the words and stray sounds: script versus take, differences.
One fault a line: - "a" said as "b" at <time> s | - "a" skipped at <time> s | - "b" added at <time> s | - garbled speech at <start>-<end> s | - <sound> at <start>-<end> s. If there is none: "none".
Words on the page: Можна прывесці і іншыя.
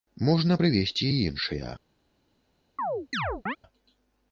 - chirp at 2.8-3.6 s